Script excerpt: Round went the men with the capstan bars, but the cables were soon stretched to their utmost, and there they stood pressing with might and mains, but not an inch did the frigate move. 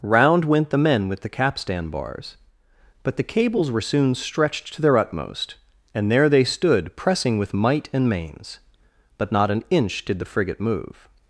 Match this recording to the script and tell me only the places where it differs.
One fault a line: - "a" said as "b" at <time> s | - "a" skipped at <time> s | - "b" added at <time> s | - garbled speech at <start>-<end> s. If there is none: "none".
none